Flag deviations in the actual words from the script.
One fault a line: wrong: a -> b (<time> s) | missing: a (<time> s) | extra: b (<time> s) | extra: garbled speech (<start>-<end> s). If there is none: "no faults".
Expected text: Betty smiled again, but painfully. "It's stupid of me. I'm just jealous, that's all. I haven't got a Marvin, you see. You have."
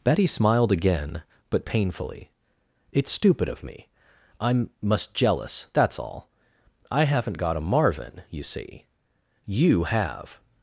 wrong: just -> must (4.8 s)